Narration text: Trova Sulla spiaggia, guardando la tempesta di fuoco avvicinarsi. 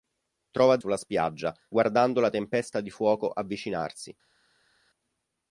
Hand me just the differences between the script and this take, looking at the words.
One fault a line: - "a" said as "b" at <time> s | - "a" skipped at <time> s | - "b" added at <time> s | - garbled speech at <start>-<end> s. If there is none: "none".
none